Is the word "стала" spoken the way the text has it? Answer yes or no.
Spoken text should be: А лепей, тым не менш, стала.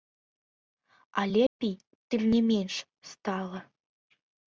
yes